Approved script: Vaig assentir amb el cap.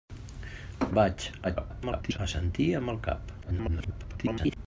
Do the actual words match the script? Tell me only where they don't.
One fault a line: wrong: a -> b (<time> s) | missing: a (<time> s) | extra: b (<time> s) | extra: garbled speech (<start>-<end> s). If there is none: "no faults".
extra: garbled speech (1.4-2.2 s)
extra: garbled speech (3.4-4.6 s)